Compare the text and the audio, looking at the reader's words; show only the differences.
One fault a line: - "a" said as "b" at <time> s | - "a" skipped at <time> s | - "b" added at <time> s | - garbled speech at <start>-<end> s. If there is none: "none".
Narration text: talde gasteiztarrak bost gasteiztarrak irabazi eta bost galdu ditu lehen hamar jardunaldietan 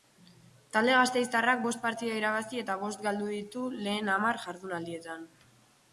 - "gasteiztarrak" said as "partida" at 1.9 s